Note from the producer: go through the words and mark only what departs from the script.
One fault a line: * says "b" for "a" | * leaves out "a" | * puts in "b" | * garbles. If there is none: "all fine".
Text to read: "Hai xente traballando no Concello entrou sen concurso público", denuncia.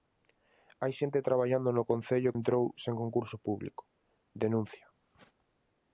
all fine